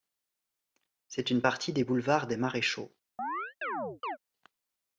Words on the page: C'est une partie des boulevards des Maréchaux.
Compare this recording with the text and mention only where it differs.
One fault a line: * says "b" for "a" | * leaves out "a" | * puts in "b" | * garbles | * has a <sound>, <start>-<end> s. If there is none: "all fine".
* has a chirp, 3.2-4.2 s